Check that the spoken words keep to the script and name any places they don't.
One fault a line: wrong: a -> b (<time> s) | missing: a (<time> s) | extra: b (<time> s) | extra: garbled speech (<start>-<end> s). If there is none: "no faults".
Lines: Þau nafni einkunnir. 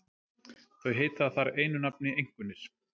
extra: heita þar einu (1.0 s)